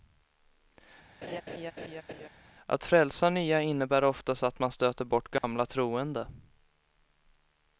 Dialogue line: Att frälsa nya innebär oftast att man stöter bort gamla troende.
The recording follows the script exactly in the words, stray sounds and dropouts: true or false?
false